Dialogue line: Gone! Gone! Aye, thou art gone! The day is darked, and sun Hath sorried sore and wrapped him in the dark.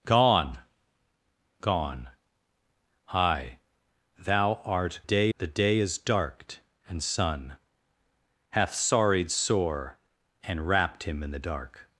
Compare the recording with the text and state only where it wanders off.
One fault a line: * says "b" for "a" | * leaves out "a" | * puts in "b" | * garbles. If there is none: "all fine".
* says "day" for "gone"